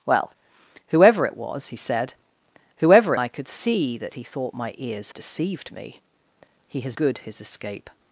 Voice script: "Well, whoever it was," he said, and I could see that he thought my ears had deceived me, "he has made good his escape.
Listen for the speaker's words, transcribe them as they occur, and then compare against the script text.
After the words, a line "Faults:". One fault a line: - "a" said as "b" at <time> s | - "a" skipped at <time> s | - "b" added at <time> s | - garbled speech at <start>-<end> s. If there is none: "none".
"Well, whoever it was," he said, whoever I could see that he thought my ears deceived me, "he has good his escape.
Faults:
- "and" said as "whoever" at 2.8 s
- "had" skipped at 5.1 s
- "made" skipped at 7.0 s